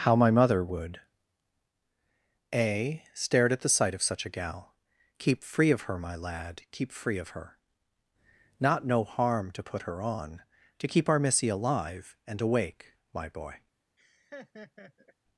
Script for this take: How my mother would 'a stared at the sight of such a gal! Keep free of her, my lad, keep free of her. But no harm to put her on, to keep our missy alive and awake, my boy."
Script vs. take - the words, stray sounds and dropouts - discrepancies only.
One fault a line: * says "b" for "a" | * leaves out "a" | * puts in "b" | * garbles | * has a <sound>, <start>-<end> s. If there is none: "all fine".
* says "Not" for "But"
* has a laugh, 14.0-15.1 s